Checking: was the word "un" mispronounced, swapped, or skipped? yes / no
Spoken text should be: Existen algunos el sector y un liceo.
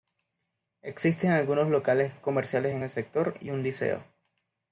no